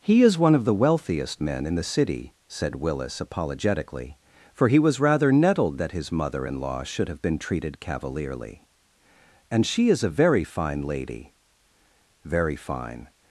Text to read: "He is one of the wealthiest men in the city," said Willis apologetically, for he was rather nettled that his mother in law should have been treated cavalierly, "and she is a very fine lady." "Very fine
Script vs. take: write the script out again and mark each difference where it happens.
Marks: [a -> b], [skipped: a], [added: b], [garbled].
"He is one of the wealthiest men in the city," said Willis apologetically, for he was rather nettled that his mother in law should have been treated cavalierly, "and she is a very fine lady." "Very fine